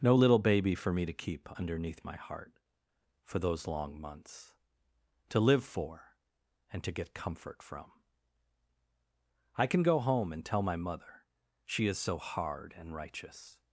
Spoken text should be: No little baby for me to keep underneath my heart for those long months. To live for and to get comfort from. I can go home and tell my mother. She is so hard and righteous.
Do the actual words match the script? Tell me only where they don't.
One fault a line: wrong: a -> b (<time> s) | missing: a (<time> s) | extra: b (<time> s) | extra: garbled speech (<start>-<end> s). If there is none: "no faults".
no faults